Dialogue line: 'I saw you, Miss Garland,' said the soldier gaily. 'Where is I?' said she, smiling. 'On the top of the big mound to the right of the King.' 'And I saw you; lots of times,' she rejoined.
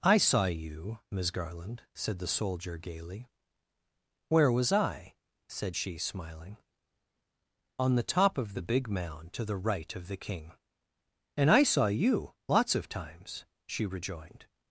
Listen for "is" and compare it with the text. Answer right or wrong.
wrong